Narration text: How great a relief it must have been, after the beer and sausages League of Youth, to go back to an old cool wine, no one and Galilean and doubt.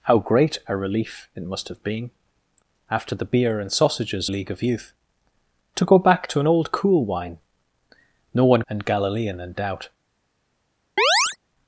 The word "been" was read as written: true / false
true